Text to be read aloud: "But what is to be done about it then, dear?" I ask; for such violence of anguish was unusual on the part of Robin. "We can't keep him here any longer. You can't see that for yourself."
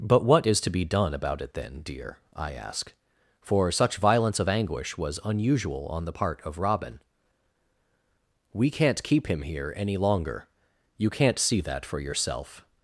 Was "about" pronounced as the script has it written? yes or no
yes